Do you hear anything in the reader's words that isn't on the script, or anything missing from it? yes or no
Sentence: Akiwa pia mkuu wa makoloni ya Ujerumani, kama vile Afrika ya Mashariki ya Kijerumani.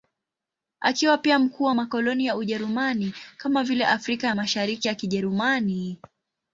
no